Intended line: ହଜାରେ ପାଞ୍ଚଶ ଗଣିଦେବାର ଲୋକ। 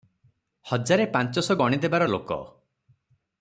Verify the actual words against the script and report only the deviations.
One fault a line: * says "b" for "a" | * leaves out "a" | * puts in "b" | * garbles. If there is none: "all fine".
all fine